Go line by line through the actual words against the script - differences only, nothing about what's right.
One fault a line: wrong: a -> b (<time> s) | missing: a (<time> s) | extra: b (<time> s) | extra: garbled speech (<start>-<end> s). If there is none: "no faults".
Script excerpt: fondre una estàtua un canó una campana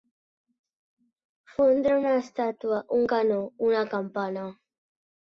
no faults